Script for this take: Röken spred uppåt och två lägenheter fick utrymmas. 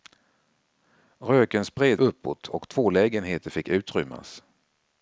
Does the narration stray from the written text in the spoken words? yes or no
no